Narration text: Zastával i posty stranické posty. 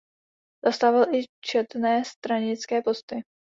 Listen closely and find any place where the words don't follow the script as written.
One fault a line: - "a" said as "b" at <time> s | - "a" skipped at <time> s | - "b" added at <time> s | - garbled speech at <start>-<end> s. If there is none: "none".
- "posty" said as "četné" at 1.4 s